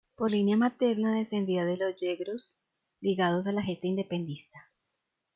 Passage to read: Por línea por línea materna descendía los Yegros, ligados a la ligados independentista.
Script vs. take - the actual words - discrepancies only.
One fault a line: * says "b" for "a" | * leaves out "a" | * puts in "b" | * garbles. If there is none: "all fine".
* leaves out "por línea"
* puts in "de"
* says "gesta" for "ligados"